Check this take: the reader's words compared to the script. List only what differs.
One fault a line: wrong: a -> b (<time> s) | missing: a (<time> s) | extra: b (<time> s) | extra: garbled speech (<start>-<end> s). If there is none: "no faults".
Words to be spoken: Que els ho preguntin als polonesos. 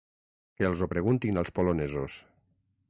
no faults